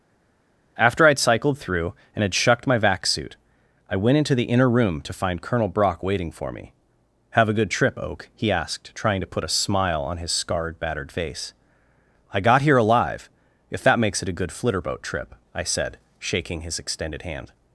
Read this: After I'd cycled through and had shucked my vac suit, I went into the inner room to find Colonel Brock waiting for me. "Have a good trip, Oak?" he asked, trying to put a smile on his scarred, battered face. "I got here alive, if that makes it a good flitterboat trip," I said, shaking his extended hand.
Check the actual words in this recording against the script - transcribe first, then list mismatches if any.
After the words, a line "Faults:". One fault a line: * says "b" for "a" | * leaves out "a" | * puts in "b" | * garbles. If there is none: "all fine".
After I'd cycled through and had shucked my vac suit, I went into the inner room to find Colonel Brock waiting for me. "Have a good trip, Oak?" he asked, trying to put a smile on his scarred, battered face. "I got here alive, if that makes it a good flitterboat trip," I said, shaking his extended hand.
Faults:
all fine